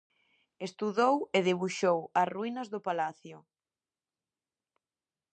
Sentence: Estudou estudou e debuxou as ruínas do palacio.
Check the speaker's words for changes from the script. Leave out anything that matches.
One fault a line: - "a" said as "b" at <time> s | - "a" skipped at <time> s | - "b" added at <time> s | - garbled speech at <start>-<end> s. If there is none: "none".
- "estudou" skipped at 1.1 s